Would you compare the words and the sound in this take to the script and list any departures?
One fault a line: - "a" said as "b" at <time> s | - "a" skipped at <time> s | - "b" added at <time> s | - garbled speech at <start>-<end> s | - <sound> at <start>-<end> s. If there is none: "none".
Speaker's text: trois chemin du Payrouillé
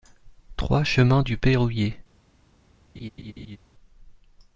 - laugh at 3.0-3.6 s